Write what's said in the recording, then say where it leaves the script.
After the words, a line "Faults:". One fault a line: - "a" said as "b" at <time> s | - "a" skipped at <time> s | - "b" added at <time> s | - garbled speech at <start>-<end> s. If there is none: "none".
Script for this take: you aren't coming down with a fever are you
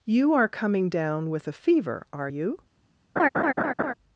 you are coming down with a fever are you
Faults:
- "aren't" said as "are" at 0.3 s